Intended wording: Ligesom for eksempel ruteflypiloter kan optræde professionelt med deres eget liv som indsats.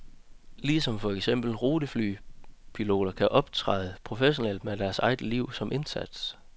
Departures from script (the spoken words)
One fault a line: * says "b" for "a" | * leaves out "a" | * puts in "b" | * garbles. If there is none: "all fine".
all fine